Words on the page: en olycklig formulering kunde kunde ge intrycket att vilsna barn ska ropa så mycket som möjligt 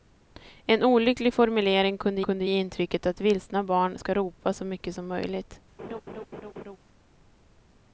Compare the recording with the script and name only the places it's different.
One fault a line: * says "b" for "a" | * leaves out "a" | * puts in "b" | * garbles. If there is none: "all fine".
all fine